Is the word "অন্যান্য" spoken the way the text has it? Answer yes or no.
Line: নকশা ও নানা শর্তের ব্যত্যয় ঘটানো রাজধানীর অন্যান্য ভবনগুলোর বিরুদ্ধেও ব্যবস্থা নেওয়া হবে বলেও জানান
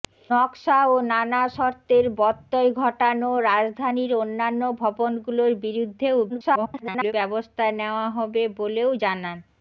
yes